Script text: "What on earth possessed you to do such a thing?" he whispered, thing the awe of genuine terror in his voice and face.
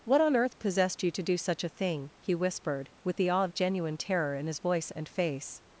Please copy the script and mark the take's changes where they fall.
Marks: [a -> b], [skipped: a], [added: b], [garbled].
"What on earth possessed you to do such a thing?" he whispered, [thing -> with] the awe of genuine terror in his voice and face.